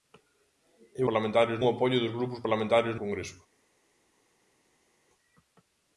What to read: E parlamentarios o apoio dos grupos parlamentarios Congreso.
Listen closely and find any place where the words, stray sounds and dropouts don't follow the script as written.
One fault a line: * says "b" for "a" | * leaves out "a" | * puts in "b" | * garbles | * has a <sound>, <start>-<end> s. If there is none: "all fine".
all fine